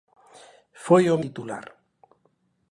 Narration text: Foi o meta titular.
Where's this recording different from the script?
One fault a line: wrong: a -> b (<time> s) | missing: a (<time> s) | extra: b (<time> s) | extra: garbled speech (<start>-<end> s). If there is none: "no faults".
missing: meta (1.2 s)